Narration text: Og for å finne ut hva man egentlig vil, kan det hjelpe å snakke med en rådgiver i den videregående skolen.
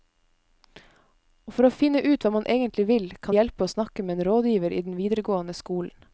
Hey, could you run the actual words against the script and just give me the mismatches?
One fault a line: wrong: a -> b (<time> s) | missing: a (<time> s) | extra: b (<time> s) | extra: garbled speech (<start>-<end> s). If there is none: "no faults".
missing: det (3.4 s)